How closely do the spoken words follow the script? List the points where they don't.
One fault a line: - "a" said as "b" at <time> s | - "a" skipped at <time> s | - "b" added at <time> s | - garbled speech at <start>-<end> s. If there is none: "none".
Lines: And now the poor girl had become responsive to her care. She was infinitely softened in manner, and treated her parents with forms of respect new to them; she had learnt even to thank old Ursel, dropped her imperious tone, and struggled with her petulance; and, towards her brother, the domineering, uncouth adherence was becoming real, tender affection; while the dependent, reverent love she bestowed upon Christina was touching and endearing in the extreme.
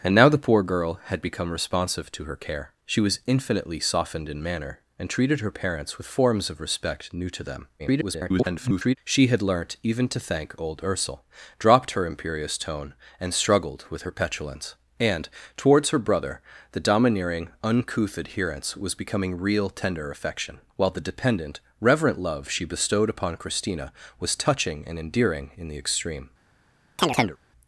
- garbled speech at 7.8-9.0 s